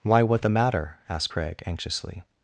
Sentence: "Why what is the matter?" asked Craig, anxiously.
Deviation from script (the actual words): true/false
true